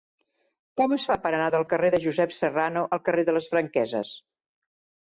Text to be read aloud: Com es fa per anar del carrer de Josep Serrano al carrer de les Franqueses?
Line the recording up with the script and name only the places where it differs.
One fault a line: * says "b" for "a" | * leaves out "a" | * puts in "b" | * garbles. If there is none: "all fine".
all fine